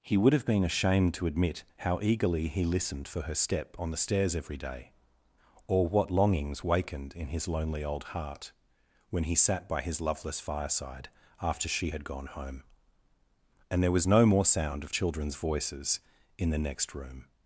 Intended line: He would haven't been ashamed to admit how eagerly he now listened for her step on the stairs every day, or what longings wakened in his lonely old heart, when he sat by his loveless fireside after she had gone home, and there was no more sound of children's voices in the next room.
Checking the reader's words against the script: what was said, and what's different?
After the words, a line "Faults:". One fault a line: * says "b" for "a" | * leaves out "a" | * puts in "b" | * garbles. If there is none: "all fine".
He would have been ashamed to admit how eagerly he listened for her step on the stairs every day, or what longings wakened in his lonely old heart, when he sat by his loveless fireside after she had gone home, and there was no more sound of children's voices in the next room.
Faults:
* says "have" for "haven't"
* leaves out "now"